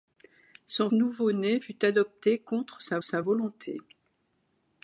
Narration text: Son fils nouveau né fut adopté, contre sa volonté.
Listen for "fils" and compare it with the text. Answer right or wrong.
wrong